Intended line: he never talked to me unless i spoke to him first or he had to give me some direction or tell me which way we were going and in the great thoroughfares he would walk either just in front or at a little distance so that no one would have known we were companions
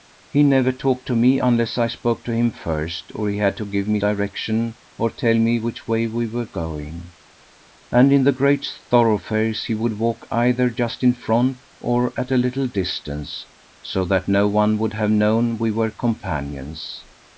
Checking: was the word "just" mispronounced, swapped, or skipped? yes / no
no